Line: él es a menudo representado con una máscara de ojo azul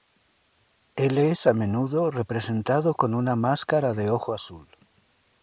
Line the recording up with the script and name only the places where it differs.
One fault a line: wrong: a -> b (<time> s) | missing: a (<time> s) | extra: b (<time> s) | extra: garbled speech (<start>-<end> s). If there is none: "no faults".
no faults